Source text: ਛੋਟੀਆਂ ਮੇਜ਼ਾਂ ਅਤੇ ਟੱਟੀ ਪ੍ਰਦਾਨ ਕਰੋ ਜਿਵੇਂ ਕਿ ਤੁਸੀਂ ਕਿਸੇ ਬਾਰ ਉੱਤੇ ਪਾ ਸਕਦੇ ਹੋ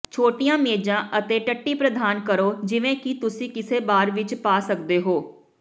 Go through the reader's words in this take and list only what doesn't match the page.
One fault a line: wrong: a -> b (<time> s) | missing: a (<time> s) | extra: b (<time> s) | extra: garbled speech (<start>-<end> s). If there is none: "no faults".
wrong: ਉੱਤੇ -> ਵਿੱਚ (4.1 s)